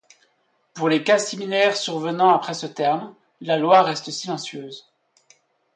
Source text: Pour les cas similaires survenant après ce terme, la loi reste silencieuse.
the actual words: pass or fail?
pass